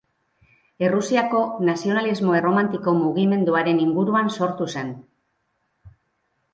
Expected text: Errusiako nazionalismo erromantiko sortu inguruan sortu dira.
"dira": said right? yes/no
no